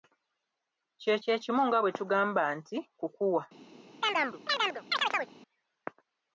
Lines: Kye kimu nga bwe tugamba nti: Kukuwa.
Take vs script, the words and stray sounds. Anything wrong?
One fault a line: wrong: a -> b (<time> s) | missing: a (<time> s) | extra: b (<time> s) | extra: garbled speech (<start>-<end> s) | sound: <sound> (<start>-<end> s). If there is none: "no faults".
extra: kye (1.2 s)
sound: chirp (4.0-5.3 s)